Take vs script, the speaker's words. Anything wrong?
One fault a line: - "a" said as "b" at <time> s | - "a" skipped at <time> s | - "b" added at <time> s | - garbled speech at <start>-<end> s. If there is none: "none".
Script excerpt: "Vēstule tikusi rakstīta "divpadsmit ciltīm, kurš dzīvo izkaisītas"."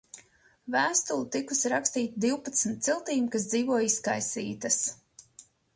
- "kurš" said as "kas" at 3.4 s